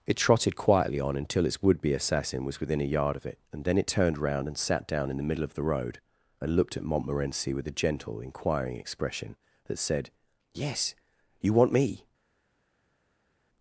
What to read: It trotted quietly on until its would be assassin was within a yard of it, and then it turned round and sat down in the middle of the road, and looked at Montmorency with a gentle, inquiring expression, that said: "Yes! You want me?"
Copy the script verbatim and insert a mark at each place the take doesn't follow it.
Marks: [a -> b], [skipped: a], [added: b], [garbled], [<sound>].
It trotted quietly on until its would be assassin was within a yard of it, and then it turned round and sat down in the middle of the road, and looked at Montmorency with a gentle, inquiring expression, that said: "Yes! You want me?"